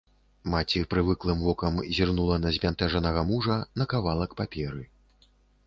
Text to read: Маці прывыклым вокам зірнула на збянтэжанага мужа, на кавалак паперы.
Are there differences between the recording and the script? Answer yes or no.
no